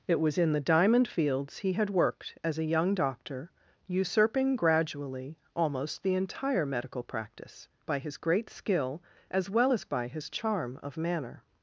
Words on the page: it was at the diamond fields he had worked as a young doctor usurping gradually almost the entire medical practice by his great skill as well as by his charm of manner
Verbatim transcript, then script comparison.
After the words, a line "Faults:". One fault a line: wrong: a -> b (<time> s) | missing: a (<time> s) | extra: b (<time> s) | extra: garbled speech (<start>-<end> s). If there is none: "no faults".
it was in the diamond fields he had worked as a young doctor usurping gradually almost the entire medical practice by his great skill as well as by his charm of manner
Faults:
wrong: at -> in (0.4 s)